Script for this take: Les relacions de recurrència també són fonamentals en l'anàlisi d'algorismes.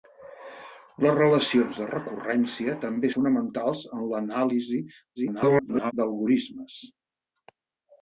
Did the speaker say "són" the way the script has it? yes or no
no